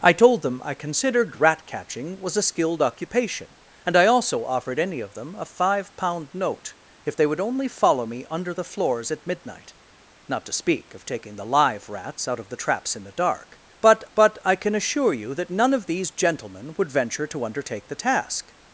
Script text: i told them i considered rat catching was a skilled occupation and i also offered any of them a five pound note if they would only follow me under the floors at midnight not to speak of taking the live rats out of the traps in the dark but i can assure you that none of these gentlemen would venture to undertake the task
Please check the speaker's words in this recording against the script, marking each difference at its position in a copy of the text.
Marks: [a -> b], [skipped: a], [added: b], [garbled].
i told them i considered rat catching was a skilled occupation and i also offered any of them a five pound note if they would only follow me under the floors at midnight not to speak of taking the live rats out of the traps in the dark but [added: but] i can assure you that none of these gentlemen would venture to undertake the task